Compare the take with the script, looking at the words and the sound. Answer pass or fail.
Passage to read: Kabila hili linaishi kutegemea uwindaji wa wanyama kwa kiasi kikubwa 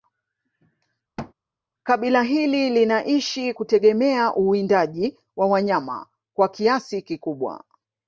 fail